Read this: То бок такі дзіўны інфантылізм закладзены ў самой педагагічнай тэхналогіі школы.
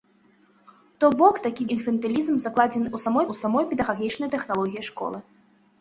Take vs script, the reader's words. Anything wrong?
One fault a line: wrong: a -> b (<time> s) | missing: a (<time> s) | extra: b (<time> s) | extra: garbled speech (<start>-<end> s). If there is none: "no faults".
missing: дзіўны (1.7 s)
extra: ў самой (3.3 s)